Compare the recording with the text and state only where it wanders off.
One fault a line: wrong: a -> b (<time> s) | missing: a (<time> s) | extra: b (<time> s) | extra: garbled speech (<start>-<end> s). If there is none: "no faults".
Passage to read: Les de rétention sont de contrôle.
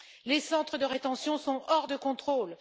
extra: centres (0.4 s)
extra: hors (1.7 s)